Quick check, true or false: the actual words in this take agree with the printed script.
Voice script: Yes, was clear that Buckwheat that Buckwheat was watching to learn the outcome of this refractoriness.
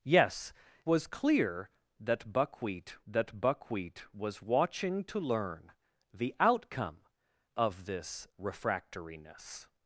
true